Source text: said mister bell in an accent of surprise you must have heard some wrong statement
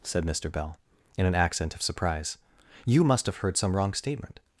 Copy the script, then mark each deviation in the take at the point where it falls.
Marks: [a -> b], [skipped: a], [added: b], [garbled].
said mister bell in an accent of surprise you must have heard some wrong statement